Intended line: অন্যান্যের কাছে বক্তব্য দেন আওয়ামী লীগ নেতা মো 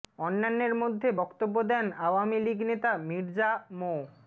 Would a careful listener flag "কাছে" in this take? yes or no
yes